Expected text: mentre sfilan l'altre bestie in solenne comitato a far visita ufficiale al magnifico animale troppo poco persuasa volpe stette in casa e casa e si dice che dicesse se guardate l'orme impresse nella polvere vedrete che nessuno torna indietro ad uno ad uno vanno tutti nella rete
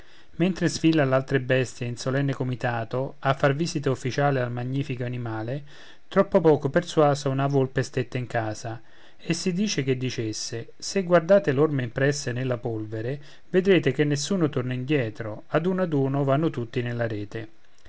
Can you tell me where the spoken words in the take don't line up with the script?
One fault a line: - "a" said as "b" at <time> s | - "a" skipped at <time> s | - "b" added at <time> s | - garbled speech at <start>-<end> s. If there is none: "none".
- "una" added at 7.3 s
- "casa e" skipped at 9.3 s